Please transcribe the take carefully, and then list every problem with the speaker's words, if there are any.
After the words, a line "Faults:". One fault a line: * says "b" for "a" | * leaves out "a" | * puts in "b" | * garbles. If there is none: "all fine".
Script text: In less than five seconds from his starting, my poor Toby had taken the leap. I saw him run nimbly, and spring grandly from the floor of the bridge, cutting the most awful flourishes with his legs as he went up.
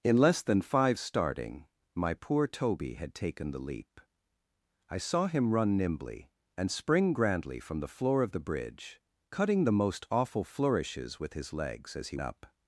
In less than five starting, my poor Toby had taken the leap. I saw him run nimbly, and spring grandly from the floor of the bridge, cutting the most awful flourishes with his legs as he up.
Faults:
* leaves out "seconds from his"
* leaves out "went"